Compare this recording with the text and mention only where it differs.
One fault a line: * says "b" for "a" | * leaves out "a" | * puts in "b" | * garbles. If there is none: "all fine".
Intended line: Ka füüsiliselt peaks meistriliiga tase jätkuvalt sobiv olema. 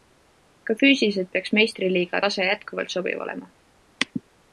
all fine